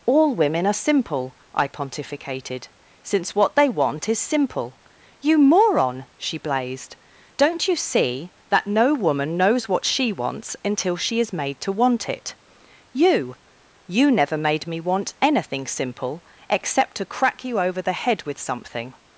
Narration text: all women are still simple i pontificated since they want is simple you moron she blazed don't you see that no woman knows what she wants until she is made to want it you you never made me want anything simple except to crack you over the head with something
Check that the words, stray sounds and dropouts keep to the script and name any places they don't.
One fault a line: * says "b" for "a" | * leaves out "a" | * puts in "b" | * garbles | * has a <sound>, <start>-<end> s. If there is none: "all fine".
* leaves out "still"
* puts in "what"